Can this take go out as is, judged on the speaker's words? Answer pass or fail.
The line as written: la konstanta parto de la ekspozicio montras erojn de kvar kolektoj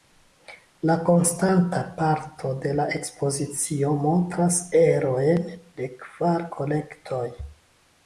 pass